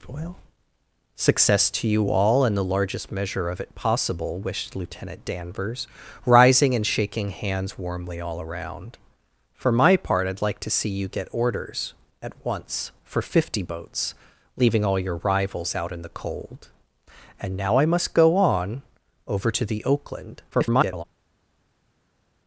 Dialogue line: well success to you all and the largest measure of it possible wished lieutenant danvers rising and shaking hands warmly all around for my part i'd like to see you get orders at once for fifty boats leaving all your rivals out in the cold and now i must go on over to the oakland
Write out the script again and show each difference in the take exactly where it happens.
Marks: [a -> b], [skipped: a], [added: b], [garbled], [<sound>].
well success to you all and the largest measure of it possible wished lieutenant danvers rising and shaking hands warmly all around for my part i'd like to see you get orders at once for fifty boats leaving all your rivals out in the cold and now i must go on over to the oakland [garbled]